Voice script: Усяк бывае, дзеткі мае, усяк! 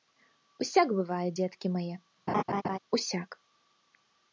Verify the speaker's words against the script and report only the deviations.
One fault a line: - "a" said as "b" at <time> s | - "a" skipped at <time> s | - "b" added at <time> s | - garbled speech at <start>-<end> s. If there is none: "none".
none